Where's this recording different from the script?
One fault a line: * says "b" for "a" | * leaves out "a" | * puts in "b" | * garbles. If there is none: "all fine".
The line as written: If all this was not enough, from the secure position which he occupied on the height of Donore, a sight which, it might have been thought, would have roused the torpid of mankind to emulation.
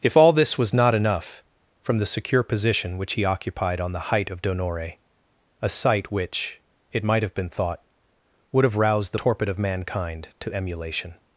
all fine